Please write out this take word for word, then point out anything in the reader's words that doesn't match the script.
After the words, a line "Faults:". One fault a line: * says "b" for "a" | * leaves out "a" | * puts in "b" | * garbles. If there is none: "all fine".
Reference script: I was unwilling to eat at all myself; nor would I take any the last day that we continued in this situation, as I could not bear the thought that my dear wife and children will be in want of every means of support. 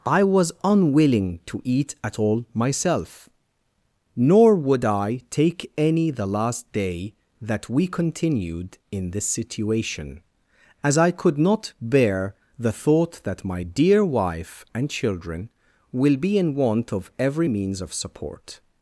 I was unwilling to eat at all myself; nor would I take any the last day that we continued in this situation, as I could not bear the thought that my dear wife and children will be in want of every means of support.
Faults:
all fine